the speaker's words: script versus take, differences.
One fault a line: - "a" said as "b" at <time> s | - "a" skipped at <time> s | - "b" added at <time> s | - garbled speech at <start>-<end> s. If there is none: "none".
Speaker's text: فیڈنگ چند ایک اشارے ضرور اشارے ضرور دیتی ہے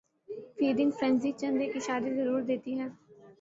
- "فرینزی" added at 1.0 s
- "اشارے ضرور" skipped at 2.4 s